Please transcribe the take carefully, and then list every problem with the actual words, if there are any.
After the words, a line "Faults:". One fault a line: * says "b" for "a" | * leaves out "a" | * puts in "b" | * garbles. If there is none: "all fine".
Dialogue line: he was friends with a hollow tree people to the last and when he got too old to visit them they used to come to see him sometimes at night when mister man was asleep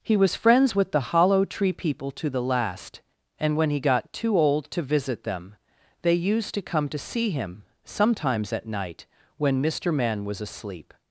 he was friends with the hollow tree people to the last and when he got too old to visit them they used to come to see him sometimes at night when mister man was asleep
Faults:
* says "the" for "a"